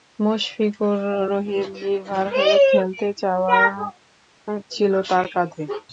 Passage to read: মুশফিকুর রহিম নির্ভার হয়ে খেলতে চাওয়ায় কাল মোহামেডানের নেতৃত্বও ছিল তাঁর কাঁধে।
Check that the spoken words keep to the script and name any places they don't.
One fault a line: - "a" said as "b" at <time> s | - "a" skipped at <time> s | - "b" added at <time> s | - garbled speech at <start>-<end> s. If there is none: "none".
- "কাল মোহামেডানের নেতৃত্বও" skipped at 3.7 s